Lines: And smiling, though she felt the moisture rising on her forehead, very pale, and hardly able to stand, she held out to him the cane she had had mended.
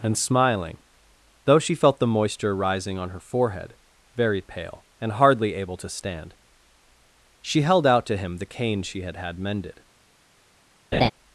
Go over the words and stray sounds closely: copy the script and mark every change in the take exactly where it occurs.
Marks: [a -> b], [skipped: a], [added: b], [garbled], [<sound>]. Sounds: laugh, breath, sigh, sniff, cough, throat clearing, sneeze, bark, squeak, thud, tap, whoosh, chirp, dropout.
And smiling, though she felt the moisture rising on her forehead, very pale, and hardly able to stand, she held out to him the cane she had had mended. [laugh]